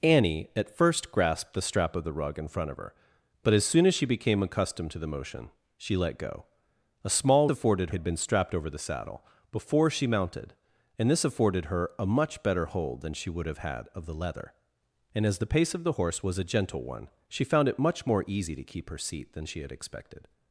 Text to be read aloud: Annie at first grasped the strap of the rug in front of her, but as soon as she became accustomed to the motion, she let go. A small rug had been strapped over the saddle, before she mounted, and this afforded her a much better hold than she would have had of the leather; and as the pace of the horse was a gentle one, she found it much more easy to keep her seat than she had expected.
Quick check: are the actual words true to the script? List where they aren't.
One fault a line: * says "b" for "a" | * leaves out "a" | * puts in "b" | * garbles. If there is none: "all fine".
* says "afforded" for "rug"